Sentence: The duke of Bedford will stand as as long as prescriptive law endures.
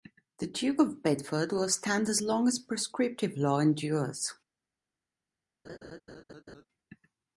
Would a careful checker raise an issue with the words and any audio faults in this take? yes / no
yes